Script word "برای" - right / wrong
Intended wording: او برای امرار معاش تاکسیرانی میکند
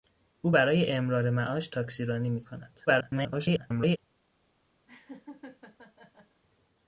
right